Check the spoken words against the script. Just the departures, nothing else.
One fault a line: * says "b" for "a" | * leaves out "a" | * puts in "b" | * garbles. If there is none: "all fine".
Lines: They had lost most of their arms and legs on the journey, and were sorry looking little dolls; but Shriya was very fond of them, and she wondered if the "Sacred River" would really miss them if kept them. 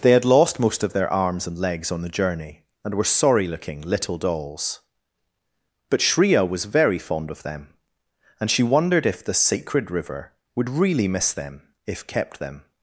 all fine